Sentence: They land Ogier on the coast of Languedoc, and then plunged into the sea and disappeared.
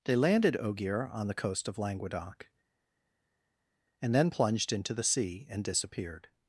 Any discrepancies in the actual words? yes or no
yes